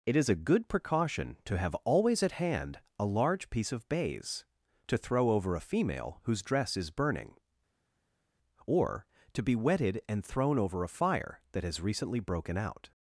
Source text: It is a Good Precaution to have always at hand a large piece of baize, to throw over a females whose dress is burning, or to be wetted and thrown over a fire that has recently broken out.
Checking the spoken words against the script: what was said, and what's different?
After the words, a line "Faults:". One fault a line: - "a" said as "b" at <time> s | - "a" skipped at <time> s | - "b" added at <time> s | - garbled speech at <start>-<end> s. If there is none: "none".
It is a Good Precaution to have always at hand a large piece of baize, to throw over a female whose dress is burning, or to be wetted and thrown over a fire that has recently broken out.
Faults:
- "females" said as "female" at 5.6 s